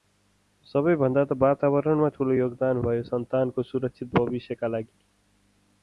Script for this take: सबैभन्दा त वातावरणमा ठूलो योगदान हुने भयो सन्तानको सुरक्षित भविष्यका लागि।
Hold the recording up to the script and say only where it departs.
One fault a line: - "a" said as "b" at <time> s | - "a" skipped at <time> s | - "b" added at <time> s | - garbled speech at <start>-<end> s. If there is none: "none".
- "हुने" skipped at 2.8 s